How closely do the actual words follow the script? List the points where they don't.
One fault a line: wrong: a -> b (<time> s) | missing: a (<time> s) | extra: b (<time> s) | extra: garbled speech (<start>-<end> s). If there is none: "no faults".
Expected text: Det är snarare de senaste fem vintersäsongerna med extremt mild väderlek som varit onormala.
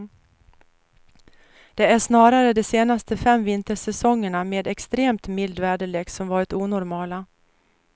no faults